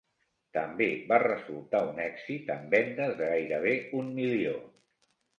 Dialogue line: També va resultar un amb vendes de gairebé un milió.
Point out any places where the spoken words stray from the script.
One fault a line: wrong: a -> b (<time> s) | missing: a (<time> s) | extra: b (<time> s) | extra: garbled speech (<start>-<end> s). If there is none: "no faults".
extra: èxit (2.0 s)